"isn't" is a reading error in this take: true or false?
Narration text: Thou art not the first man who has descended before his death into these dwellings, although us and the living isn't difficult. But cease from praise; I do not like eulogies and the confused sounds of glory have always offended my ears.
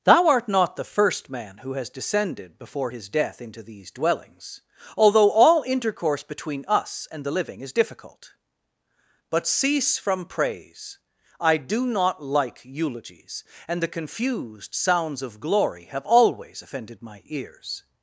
true